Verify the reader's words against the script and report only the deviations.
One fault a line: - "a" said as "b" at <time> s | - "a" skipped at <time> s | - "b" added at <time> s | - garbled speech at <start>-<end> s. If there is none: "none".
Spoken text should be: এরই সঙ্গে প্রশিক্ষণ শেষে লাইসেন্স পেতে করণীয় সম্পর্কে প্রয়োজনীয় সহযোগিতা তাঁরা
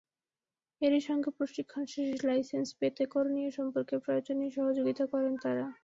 - "করেন" added at 5.1 s